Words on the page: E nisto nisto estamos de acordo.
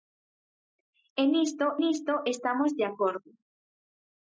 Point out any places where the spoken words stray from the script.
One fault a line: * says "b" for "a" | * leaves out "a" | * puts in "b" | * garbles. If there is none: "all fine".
all fine